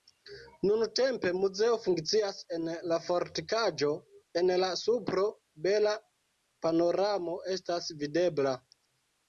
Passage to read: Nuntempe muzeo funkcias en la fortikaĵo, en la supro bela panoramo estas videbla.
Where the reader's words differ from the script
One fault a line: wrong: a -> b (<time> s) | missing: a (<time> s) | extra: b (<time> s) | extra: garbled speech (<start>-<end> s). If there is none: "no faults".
no faults